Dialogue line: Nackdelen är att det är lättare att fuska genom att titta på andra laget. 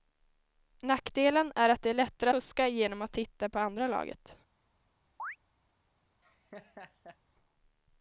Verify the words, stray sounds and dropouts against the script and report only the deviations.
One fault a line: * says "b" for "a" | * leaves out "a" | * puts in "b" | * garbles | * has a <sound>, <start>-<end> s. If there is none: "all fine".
* leaves out "att"
* has a chirp, 5.2-5.4 s
* has a laugh, 6.2-7.2 s